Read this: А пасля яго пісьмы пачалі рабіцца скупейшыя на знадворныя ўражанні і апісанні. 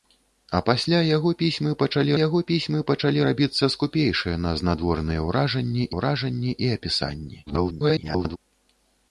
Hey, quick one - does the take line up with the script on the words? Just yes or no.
no